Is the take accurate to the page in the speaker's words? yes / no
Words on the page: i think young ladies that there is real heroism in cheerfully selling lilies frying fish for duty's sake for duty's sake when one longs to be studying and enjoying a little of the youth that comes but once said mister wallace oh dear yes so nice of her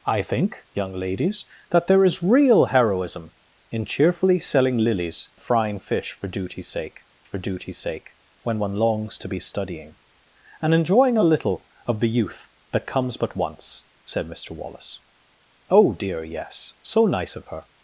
yes